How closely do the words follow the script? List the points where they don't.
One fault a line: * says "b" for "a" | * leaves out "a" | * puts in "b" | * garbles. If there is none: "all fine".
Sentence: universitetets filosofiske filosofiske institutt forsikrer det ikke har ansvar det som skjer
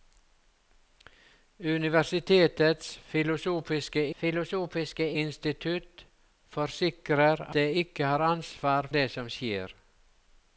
all fine